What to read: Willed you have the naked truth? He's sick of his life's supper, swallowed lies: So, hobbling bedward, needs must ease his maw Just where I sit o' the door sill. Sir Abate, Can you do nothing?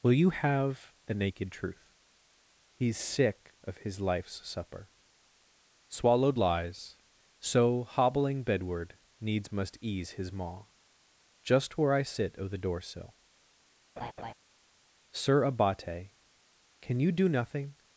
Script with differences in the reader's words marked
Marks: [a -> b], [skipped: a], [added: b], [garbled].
[Willed -> Will] you have the naked truth? He's sick of his life's supper, swallowed lies: So, hobbling bedward, needs must ease his maw Just where I sit o' the door sill. Sir Abate, Can you do nothing?